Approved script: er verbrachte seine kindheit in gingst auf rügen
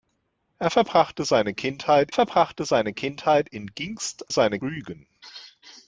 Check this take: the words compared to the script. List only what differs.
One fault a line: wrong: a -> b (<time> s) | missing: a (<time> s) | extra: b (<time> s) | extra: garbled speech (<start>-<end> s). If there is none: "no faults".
extra: verbrachte seine kindheit (2.1 s)
wrong: auf -> seine (4.3 s)